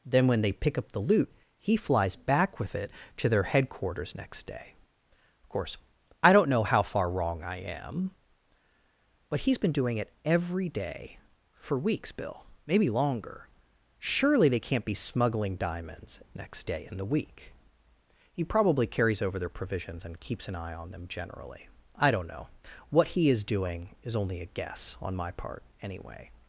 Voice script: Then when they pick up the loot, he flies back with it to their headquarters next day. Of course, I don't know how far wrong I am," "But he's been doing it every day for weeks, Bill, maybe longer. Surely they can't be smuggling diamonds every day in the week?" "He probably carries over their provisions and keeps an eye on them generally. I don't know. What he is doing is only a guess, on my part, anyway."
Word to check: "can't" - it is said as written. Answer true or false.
true